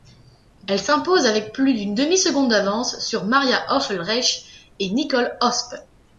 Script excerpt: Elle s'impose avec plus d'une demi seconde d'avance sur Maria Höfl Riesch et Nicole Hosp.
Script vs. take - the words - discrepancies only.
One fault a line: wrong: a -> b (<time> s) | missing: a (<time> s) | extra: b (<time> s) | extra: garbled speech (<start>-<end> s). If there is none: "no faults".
no faults